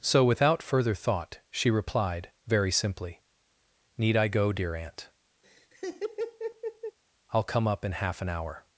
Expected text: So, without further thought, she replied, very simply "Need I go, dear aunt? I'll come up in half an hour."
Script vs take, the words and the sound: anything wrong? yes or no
yes